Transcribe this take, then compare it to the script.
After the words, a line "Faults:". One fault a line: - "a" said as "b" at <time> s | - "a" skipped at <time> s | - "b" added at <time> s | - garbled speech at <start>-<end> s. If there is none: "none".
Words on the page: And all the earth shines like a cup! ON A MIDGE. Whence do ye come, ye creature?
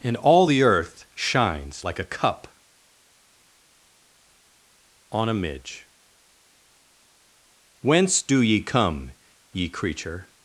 And all the earth shines like a cup! ON A MIDGE. Whence do ye come, ye creature?
Faults:
none